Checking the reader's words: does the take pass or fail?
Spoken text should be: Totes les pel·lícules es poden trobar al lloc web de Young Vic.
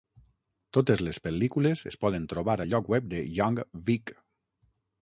pass